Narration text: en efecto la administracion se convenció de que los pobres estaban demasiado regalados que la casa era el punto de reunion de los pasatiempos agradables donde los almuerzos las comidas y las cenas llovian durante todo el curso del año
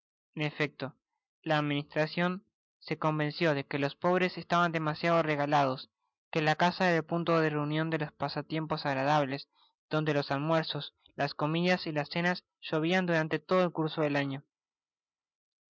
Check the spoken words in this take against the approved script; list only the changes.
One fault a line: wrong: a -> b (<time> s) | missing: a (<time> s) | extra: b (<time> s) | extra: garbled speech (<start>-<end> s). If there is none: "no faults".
no faults